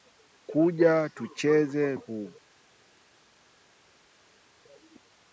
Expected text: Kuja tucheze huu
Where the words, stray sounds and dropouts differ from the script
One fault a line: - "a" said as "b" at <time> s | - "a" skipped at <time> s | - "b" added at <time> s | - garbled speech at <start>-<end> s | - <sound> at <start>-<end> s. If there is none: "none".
none